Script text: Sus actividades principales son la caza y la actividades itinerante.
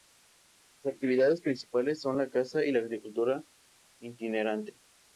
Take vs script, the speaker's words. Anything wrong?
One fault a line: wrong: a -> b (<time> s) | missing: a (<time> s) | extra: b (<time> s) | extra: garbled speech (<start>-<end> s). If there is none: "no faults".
wrong: actividades -> agricultura (2.8 s)